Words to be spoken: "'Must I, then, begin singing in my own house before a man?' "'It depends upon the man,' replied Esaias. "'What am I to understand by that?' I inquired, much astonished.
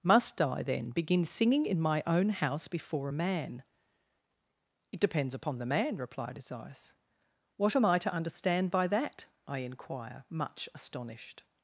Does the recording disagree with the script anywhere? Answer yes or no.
yes